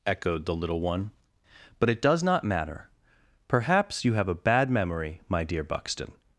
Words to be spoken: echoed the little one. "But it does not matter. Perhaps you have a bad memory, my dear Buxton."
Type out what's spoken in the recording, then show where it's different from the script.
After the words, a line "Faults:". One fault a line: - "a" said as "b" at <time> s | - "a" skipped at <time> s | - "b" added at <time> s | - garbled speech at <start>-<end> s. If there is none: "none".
echoed the little one. "But it does not matter. Perhaps you have a bad memory, my dear Buxton."
Faults:
none